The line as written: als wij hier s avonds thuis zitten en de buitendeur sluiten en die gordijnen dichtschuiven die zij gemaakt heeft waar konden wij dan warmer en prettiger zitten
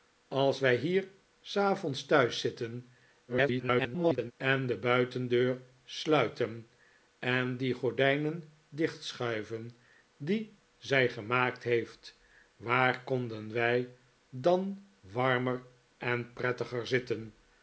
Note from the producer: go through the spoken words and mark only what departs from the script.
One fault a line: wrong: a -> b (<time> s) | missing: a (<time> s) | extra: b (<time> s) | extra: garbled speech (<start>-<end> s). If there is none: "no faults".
extra: garbled speech (3.3-4.3 s)